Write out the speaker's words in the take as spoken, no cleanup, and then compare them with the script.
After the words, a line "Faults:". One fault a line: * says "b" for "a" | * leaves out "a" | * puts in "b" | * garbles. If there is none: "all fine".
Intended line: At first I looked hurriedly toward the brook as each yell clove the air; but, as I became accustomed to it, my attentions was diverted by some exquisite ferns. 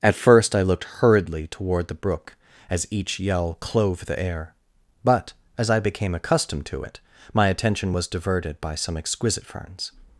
At first I looked hurriedly toward the brook as each yell clove the air; but, as I became accustomed to it, my attention was diverted by some exquisite ferns.
Faults:
* says "attention" for "attentions"